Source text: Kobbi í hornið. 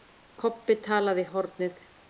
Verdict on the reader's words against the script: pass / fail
fail